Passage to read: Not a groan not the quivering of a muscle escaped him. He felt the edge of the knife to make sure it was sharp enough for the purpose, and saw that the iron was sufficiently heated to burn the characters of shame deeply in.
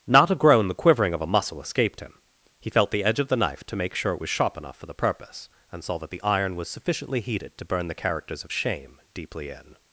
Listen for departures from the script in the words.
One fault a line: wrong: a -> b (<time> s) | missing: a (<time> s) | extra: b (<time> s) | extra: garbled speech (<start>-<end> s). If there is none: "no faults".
missing: not (0.7 s)